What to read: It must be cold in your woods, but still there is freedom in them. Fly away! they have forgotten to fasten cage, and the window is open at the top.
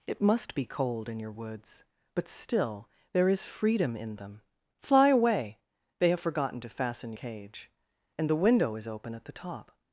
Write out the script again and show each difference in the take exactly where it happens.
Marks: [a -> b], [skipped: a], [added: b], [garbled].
It must be cold in your woods, but still there is freedom in them. Fly away! they have forgotten to fasten cage, and the window is open at the top.